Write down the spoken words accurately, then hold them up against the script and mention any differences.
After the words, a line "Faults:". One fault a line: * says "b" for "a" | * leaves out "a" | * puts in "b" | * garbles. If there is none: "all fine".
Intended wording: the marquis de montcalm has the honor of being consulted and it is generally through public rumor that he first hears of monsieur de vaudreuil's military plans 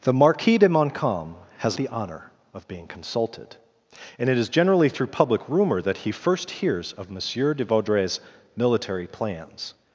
the marquis de montcalm has the honor of being consulted and it is generally through public rumor that he first hears of monsieur de vaudreuil's military plans
Faults:
all fine